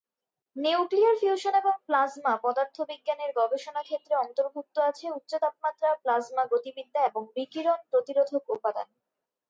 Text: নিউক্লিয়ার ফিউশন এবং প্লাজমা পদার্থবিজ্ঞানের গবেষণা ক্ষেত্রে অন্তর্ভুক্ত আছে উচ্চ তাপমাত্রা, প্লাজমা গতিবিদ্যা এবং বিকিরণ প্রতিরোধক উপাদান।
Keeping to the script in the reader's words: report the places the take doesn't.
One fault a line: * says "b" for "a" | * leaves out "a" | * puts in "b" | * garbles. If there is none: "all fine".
all fine